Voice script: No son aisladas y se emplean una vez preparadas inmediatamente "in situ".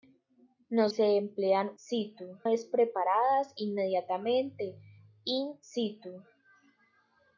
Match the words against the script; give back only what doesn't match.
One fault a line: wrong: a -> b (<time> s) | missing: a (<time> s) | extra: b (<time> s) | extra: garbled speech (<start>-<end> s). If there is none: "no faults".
missing: son aisladas y (0.9 s)
wrong: una -> situ (1.8 s)